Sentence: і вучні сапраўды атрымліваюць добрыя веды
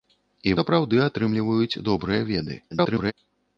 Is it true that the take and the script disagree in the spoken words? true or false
true